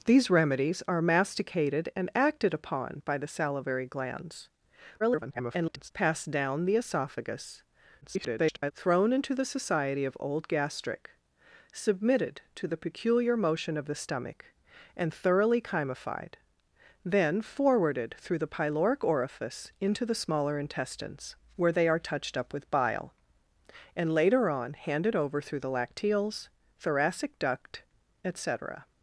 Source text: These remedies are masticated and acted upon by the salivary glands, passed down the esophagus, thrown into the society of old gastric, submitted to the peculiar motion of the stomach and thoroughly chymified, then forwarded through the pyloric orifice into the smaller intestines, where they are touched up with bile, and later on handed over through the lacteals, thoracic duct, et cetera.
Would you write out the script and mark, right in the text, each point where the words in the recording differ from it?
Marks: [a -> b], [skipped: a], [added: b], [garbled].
These remedies are masticated and acted upon by the salivary glands, [garbled] passed down the esophagus, [garbled] thrown into the society of old gastric, submitted to the peculiar motion of the stomach and thoroughly chymified, then forwarded through the pyloric orifice into the smaller intestines, where they are touched up with bile, and later on handed over through the lacteals, thoracic duct, et cetera.